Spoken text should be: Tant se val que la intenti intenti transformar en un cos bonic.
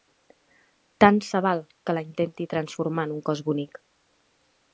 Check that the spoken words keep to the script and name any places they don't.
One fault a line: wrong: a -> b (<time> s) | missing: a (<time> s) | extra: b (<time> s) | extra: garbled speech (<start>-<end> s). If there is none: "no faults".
missing: intenti (2.5 s)